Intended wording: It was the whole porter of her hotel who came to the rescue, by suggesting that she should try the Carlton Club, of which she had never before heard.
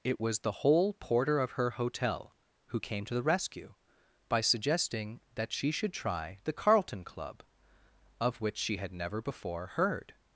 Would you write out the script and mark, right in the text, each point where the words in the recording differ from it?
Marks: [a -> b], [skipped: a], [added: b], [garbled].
It was the whole porter of her hotel who came to the rescue, by suggesting that she should try the Carlton Club, of which she had never before heard.